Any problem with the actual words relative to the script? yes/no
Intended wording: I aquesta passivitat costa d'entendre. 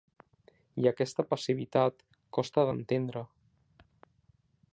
no